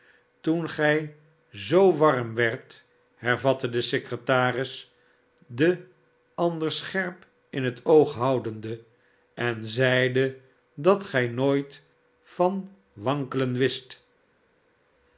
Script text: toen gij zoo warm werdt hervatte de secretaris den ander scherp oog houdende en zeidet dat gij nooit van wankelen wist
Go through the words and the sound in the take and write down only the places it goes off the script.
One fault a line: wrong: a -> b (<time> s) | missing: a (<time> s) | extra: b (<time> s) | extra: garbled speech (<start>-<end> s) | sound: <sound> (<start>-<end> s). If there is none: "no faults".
extra: in het (7.5 s)